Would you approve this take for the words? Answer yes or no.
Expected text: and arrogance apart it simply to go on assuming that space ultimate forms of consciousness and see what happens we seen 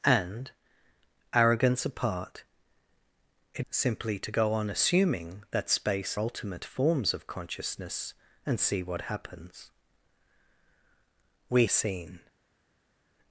yes